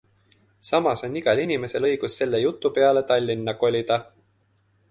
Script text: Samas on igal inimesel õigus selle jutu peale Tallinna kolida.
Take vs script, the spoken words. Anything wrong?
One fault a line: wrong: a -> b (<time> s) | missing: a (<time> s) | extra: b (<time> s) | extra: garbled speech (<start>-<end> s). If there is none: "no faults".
no faults